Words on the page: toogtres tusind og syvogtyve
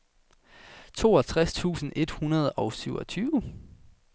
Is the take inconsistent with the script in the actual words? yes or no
yes